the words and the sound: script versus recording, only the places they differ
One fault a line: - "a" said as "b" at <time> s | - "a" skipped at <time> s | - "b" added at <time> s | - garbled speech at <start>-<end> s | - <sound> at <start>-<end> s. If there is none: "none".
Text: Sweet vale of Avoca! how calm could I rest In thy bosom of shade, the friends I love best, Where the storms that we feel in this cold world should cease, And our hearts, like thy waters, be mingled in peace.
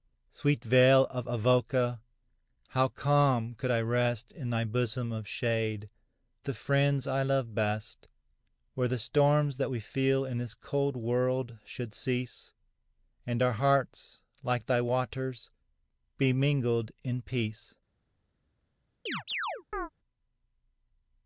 - chirp at 19.1-19.9 s